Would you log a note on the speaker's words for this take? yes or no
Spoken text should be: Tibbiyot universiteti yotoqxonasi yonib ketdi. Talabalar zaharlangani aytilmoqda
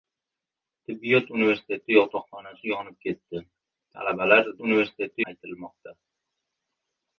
yes